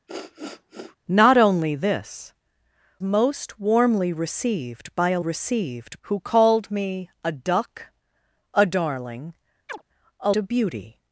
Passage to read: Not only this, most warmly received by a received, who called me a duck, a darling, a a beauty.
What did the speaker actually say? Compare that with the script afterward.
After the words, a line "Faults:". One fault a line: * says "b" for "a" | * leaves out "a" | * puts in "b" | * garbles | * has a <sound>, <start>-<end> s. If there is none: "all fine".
Not only this, most warmly received by a received, who called me a duck, a darling, a a beauty.
Faults:
* has a sniff, 0.1-1.0 s
* has a chirp, 9.7-9.8 s